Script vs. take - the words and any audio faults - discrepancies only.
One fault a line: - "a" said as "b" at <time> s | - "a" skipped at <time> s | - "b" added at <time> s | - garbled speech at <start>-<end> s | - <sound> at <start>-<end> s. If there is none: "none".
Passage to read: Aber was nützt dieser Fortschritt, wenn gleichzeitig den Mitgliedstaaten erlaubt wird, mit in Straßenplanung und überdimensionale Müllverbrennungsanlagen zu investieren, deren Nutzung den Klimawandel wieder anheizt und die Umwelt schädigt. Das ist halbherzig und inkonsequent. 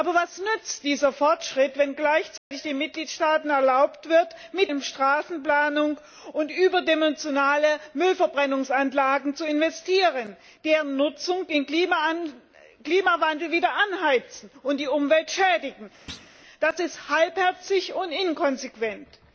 - dropout at 2.4-2.5 s
- thud at 16.1-16.3 s